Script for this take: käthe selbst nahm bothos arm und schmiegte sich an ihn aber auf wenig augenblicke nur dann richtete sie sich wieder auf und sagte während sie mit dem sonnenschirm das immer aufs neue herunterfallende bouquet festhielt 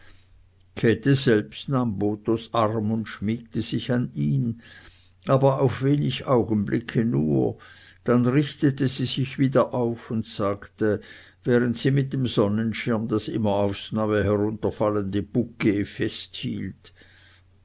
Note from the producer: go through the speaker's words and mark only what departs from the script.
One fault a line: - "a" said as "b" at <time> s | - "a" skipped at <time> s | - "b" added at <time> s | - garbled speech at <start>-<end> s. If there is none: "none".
none